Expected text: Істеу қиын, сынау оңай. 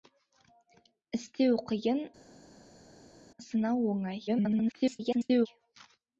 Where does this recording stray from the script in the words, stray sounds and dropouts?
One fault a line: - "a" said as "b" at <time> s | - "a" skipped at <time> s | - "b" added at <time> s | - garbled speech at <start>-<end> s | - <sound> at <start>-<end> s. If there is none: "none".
- garbled speech at 4.3-5.5 s